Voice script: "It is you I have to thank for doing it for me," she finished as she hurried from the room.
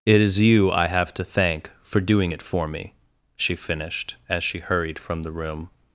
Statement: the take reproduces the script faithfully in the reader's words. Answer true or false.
true